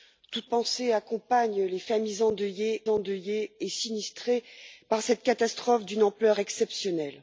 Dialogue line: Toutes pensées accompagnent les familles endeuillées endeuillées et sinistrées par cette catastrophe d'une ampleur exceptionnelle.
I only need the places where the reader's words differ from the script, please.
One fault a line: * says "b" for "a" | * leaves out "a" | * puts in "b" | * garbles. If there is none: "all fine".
all fine